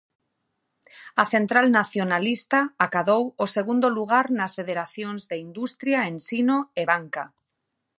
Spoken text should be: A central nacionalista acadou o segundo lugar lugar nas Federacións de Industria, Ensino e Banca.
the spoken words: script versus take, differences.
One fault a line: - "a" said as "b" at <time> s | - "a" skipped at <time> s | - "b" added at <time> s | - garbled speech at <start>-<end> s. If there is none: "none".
- "lugar" skipped at 4.2 s